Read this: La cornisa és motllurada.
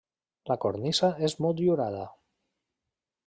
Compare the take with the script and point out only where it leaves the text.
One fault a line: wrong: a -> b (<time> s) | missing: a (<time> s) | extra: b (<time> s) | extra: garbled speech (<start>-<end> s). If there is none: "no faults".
no faults